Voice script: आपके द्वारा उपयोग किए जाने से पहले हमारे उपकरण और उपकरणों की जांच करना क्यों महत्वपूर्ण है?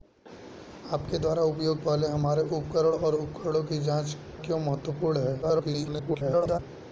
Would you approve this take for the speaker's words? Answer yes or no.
no